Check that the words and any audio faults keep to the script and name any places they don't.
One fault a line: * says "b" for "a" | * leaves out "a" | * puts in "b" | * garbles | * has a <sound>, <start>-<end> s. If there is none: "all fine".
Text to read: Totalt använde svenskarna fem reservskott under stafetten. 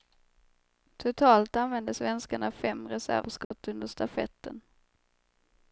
* has a dropout, 3.4-3.5 s